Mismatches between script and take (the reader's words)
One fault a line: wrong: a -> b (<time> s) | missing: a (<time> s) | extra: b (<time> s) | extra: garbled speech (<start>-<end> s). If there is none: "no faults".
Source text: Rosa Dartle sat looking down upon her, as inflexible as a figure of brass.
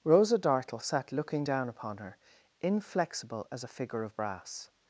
missing: as (2.2 s)